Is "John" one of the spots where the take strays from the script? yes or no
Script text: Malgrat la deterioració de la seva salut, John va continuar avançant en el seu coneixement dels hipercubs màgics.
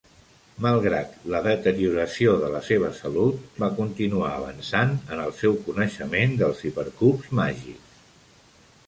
yes